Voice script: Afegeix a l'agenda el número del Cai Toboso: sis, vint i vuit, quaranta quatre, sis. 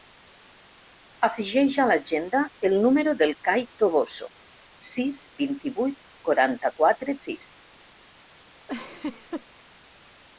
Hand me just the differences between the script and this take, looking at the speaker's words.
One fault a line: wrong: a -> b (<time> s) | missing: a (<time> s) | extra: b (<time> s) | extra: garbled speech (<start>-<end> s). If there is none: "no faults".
no faults